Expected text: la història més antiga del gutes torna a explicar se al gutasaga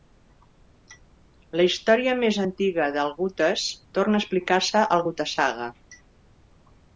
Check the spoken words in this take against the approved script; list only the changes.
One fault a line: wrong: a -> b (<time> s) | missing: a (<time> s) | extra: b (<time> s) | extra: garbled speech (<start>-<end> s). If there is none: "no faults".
no faults